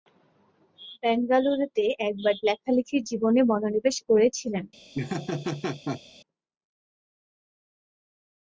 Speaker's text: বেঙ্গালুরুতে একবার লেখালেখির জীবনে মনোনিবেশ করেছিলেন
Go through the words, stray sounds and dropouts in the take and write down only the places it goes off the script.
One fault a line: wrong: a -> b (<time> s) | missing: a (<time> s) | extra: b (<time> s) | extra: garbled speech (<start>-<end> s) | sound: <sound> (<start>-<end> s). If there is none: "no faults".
sound: laugh (4.9-6.0 s)